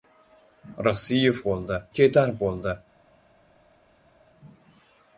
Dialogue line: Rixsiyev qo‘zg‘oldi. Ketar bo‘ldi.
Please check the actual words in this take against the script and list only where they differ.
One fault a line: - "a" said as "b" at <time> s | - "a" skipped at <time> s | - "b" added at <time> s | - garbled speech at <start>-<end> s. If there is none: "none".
- "qo‘zg‘oldi" said as "bo‘ldi" at 1.5 s